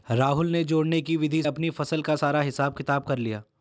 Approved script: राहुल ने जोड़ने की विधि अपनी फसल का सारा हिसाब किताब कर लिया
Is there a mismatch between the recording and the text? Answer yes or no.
no